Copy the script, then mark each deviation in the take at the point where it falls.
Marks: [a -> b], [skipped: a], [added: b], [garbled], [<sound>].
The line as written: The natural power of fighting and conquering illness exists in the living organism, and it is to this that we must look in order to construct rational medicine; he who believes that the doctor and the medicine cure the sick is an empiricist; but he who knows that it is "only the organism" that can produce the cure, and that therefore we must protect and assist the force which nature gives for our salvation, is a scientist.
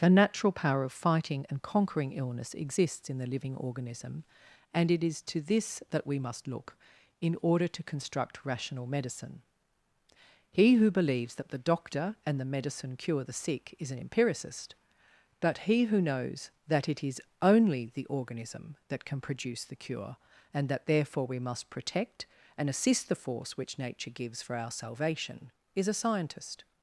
The natural power of fighting and conquering illness exists in the living organism, and it is to this that we must look in order to construct rational medicine; he who believes that the doctor and the medicine cure the sick is an empiricist; but he who knows that it is "only the organism" that can produce the cure, and that therefore we must protect and assist the force which nature gives for our salvation, is a scientist.